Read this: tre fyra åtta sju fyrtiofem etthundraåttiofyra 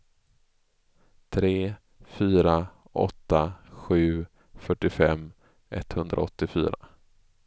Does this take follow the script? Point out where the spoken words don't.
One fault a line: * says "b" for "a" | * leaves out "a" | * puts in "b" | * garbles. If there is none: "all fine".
all fine